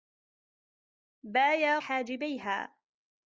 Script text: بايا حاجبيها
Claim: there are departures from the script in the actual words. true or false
false